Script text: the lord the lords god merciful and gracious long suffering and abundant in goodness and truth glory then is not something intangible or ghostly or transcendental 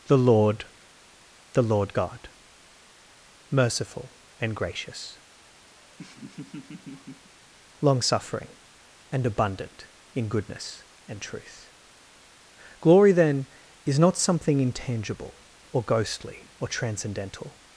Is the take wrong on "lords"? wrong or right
wrong